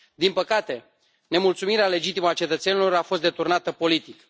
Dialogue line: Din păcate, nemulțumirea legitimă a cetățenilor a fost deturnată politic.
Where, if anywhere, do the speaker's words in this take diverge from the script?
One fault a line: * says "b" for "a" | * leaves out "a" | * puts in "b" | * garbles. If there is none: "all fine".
all fine